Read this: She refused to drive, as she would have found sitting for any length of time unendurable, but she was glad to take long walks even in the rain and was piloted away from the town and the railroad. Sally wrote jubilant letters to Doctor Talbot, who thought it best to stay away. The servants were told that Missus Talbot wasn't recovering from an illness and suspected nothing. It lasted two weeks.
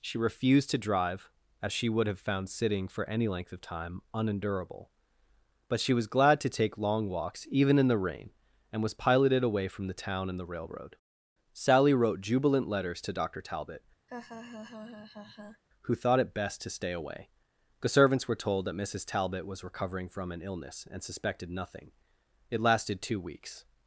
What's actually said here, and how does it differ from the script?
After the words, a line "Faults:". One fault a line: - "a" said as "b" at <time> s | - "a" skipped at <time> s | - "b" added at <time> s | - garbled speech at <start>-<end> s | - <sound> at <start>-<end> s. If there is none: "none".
She refused to drive, as she would have found sitting for any length of time unendurable, but she was glad to take long walks even in the rain and was piloted away from the town and the railroad. Sally wrote jubilant letters to Doctor Talbot, who thought it best to stay away. The servants were told that Missus Talbot was recovering from an illness and suspected nothing. It lasted two weeks.
Faults:
- laugh at 14.1-15.6 s
- "wasn't" said as "was" at 19.5 s